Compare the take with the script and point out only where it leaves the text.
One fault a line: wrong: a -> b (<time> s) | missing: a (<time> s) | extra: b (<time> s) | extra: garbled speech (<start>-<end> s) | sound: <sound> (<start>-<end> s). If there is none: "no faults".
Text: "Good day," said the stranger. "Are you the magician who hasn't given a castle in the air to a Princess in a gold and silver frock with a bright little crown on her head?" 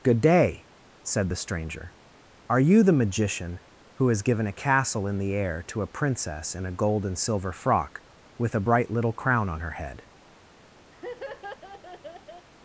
wrong: hasn't -> has (4.1 s)
sound: laugh (10.9-12.5 s)